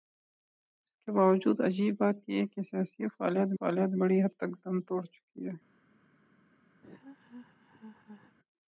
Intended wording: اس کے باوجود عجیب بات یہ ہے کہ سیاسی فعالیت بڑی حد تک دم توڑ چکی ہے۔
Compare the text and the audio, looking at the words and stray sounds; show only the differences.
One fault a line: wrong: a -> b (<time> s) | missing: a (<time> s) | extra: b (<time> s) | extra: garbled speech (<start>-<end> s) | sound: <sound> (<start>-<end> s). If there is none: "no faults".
extra: فعالیت (3.6 s)
sound: laugh (6.8-8.4 s)